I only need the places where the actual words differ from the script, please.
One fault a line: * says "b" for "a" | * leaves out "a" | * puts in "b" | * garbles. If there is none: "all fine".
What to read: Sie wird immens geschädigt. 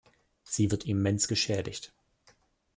all fine